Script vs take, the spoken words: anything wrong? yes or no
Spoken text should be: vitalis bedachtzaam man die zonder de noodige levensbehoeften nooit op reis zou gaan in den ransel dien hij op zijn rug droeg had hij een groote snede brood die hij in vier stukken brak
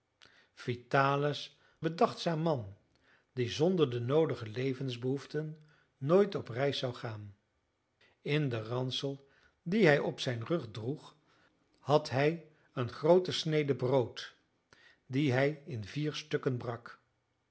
no